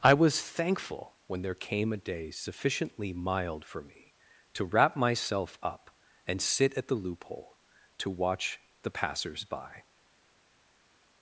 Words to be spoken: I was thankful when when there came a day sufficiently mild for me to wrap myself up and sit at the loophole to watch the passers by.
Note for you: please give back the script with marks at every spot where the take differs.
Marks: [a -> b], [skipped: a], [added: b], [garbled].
I was thankful when [skipped: when] there came a day sufficiently mild for me to wrap myself up and sit at the loophole to watch the passers by.